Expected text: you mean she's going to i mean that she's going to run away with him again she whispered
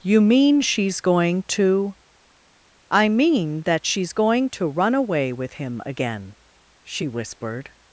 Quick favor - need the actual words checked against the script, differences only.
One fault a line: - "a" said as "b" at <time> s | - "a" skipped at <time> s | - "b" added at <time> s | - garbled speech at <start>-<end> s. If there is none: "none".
none